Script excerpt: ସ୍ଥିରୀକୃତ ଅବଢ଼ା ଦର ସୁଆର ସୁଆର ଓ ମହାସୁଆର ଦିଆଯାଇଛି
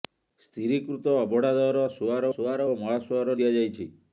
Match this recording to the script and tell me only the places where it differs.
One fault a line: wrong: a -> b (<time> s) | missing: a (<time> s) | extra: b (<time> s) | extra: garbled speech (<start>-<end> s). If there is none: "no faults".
no faults